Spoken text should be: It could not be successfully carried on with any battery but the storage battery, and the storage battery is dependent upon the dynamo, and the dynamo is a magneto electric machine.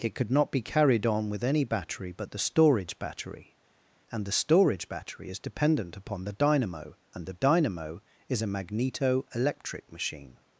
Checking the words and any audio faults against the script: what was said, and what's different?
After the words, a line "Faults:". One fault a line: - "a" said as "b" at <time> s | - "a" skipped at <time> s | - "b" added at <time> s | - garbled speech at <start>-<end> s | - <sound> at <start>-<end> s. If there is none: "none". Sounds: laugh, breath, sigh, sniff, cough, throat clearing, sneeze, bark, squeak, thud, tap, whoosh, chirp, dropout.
It could not be carried on with any battery but the storage battery, and the storage battery is dependent upon the dynamo, and the dynamo is a magneto electric machine.
Faults:
- "successfully" skipped at 0.6 s